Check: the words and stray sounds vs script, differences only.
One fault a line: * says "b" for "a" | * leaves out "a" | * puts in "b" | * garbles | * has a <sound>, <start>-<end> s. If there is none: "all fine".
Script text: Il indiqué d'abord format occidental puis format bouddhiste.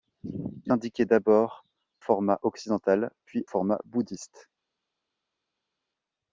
all fine